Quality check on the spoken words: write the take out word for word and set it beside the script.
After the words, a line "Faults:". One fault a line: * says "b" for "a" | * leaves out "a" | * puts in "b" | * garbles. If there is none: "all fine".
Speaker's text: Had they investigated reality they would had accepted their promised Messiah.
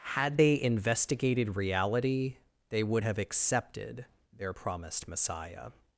Had they investigated reality they would have accepted their promised Messiah.
Faults:
* says "have" for "had"